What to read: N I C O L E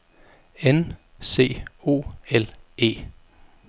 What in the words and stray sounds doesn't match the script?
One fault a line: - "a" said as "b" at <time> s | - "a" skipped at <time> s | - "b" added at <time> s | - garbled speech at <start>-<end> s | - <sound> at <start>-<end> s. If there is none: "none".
- "I" skipped at 1.0 s